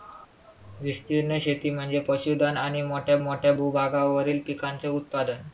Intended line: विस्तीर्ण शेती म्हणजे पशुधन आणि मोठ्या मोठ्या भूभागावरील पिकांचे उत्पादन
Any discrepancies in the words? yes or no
no